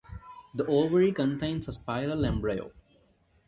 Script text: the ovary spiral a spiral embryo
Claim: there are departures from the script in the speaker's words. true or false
true